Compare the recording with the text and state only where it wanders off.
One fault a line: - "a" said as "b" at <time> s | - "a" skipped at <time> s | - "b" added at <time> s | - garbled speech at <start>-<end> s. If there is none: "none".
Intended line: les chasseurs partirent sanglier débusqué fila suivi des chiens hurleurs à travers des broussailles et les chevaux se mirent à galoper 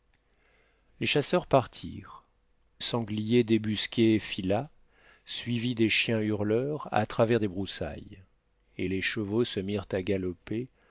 none